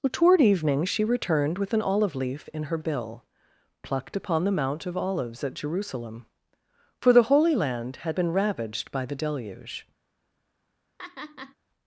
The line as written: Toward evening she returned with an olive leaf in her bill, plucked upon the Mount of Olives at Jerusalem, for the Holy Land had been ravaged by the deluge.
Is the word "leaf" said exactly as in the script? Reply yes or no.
yes